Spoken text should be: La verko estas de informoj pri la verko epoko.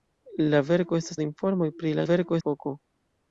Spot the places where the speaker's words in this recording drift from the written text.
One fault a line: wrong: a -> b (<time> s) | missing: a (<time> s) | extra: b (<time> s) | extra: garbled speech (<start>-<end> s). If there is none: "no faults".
no faults